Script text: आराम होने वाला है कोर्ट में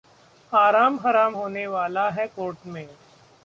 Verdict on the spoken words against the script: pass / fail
fail